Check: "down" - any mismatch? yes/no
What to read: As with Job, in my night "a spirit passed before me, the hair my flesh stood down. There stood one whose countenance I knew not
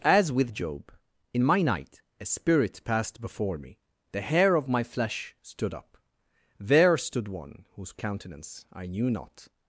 yes